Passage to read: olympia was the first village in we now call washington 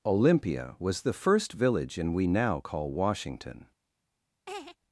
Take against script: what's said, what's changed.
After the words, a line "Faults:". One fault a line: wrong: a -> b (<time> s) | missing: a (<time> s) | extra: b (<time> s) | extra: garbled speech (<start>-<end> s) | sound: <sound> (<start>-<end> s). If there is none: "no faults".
olympia was the first village in we now call washington
Faults:
sound: laugh (4.5-4.8 s)